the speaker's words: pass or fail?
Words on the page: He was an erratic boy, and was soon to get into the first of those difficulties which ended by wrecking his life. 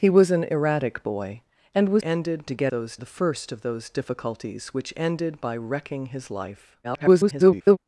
fail